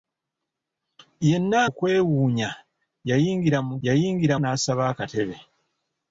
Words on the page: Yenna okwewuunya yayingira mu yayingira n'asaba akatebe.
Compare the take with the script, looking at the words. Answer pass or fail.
pass